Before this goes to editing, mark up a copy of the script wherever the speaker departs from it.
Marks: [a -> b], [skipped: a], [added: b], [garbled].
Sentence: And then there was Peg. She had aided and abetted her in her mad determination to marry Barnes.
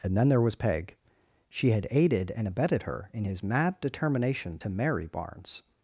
And then there was Peg. She had aided and abetted her in [her -> his] mad determination to marry Barnes.